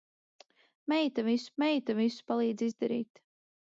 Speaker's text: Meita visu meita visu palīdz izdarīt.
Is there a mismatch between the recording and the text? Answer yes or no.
no